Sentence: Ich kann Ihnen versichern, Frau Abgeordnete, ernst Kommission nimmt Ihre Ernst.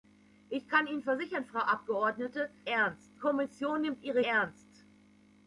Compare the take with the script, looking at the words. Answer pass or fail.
pass